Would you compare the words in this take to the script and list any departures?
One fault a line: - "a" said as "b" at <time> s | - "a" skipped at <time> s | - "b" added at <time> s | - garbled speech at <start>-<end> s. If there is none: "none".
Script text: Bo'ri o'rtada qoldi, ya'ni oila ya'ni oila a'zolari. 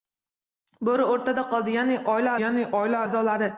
none